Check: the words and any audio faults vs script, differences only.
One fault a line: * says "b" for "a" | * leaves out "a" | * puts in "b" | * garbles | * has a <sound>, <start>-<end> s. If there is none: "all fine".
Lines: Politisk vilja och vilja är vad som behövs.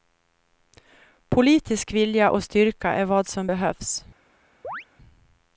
* says "styrka" for "vilja"
* has a chirp, 4.6-4.9 s